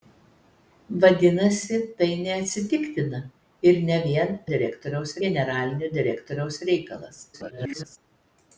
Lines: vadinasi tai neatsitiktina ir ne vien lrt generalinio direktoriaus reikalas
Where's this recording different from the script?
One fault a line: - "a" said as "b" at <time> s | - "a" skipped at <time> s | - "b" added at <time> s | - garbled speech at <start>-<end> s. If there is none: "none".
- "lrt" said as "direktoriaus" at 4.5 s
- garbled speech at 7.3-8.0 s